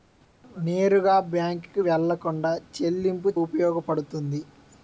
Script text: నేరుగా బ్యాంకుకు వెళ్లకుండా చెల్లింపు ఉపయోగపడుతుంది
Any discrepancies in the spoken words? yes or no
no